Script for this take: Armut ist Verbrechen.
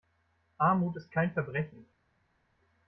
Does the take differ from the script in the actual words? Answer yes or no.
yes